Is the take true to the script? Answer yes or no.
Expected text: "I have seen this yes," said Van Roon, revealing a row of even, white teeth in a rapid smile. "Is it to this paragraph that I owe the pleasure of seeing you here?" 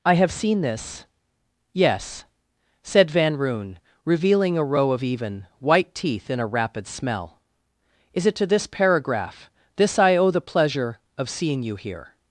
no